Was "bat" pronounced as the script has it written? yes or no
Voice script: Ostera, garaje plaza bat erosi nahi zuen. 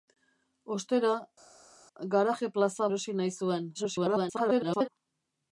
no